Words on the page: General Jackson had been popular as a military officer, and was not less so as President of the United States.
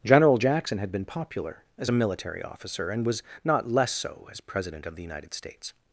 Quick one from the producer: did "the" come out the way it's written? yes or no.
yes